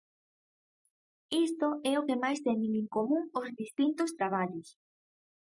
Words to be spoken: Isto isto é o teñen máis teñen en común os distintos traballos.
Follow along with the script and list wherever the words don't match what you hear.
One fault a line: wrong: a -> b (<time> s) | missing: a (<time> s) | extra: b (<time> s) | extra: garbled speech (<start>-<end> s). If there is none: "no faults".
missing: isto (1.7 s)
wrong: teñen -> que (2.1 s)